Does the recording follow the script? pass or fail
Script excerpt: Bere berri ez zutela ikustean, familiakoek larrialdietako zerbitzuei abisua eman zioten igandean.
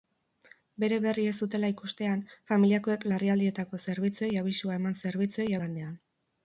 fail